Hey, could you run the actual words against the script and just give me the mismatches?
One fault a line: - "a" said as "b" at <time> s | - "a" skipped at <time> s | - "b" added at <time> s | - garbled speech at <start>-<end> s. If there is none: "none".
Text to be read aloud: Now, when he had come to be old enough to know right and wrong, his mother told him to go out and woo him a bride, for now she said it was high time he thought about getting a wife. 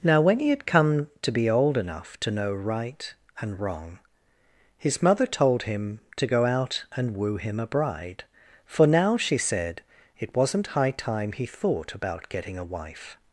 - "was" said as "wasn't" at 10.3 s